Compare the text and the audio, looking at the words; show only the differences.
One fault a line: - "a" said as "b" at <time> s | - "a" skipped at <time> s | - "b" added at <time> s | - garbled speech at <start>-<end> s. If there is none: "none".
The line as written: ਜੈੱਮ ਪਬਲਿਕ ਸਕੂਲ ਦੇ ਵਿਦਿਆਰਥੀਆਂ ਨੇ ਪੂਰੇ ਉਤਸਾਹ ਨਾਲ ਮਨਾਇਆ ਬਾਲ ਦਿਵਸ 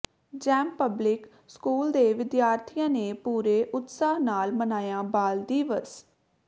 none